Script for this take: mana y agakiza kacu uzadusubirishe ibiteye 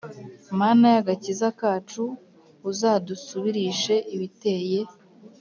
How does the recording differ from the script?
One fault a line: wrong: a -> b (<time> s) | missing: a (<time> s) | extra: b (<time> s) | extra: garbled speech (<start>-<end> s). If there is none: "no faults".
no faults